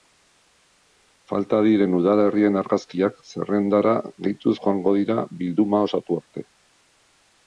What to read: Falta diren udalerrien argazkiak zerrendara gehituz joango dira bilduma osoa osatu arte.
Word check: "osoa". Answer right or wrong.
wrong